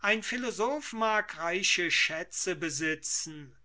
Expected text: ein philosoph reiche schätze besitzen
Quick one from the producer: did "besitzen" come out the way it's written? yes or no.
yes